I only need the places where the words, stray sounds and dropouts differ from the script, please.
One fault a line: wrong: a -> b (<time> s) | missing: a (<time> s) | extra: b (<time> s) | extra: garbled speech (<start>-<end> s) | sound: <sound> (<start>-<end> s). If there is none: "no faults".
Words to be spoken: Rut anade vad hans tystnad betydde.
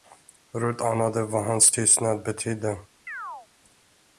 sound: chirp (3.1-3.5 s)